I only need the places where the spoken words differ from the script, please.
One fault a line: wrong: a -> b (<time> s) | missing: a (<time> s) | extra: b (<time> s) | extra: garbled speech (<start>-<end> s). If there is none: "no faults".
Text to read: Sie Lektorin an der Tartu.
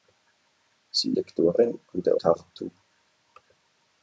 no faults